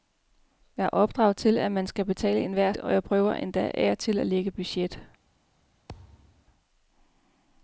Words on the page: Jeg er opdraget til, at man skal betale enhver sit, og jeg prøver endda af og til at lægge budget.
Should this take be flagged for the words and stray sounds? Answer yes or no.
yes